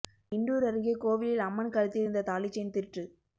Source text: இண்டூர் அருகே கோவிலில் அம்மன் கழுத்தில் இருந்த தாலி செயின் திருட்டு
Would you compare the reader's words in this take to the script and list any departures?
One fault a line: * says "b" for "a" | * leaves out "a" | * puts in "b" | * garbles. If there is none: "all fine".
all fine